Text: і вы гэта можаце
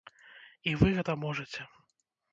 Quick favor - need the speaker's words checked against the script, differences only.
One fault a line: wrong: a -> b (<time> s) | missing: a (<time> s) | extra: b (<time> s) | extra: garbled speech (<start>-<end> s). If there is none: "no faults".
no faults